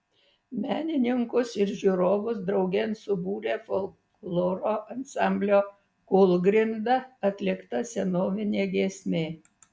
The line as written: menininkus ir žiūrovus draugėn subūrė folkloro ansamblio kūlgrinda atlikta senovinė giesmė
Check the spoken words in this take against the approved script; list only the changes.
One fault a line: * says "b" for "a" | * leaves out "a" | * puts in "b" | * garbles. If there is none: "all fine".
all fine